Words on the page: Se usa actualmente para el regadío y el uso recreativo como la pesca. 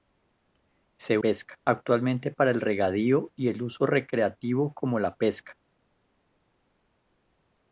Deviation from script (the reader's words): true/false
true